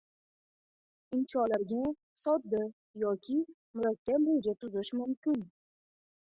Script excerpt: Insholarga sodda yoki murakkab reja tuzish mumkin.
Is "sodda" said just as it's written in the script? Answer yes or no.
yes